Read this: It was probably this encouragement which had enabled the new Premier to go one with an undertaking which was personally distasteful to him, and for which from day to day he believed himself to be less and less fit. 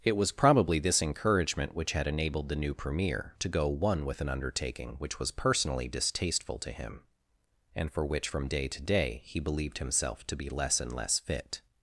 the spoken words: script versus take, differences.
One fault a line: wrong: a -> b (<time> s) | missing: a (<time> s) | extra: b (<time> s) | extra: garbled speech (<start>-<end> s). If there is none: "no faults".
no faults